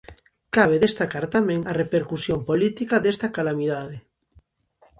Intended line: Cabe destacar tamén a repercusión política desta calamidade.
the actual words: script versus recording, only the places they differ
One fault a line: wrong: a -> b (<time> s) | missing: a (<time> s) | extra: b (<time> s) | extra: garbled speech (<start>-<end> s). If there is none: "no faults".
no faults